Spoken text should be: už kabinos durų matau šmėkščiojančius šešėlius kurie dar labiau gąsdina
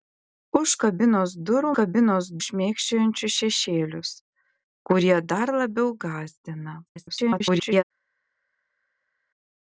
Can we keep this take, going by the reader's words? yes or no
no